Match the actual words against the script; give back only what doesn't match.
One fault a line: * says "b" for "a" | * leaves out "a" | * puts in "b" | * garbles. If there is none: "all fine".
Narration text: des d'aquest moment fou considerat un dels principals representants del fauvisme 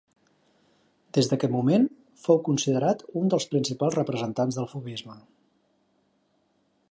all fine